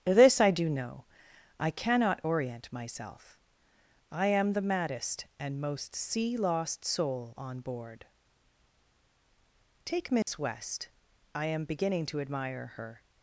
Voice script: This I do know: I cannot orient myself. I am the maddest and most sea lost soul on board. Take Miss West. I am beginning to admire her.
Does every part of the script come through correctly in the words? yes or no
yes